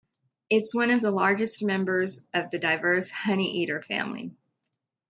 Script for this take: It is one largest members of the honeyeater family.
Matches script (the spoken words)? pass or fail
fail